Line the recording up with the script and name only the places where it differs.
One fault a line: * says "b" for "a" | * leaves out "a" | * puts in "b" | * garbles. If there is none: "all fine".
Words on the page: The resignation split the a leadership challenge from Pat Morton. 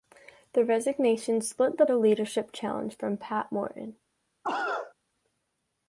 all fine